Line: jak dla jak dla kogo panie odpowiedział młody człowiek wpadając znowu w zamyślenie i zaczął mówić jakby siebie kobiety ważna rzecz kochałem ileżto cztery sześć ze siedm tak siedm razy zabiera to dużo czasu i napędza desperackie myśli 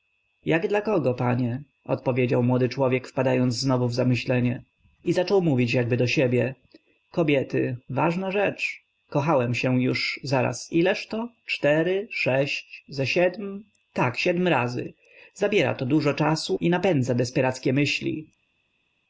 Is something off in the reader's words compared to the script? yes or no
yes